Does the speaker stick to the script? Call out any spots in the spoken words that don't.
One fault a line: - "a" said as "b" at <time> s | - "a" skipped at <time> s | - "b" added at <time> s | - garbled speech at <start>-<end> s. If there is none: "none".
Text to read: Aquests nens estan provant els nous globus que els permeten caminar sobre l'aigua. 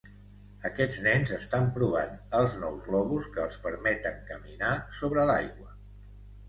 none